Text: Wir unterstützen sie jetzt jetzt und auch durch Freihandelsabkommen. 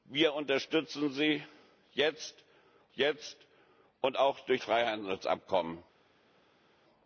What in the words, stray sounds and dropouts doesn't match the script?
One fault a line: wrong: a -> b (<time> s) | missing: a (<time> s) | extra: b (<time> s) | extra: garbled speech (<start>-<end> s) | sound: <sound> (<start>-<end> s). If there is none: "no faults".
no faults